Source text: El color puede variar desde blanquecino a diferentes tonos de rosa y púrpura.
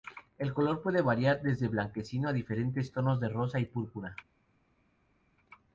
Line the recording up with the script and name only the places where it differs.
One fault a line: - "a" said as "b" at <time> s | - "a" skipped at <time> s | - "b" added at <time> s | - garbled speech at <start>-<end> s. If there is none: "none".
none